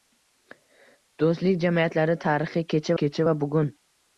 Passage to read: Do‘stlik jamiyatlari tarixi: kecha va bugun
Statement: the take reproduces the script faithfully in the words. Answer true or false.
false